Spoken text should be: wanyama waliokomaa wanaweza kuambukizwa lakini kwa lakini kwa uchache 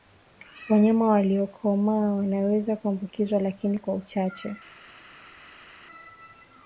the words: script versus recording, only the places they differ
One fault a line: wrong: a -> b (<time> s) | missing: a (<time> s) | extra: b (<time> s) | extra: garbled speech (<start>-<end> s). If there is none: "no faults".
missing: lakini kwa (3.9 s)